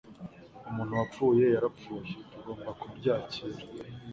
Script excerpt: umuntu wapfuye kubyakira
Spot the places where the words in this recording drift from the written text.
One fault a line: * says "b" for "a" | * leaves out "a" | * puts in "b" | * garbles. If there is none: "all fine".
* puts in "yarapfuye tugomba"